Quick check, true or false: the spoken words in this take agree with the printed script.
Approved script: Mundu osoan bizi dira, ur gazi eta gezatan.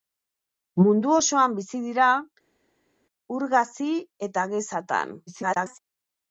false